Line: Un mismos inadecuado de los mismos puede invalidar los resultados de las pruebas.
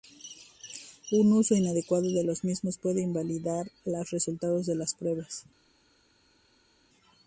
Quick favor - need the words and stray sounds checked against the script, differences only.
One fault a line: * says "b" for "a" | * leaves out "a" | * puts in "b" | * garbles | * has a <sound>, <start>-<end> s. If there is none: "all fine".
* says "uso" for "mismos"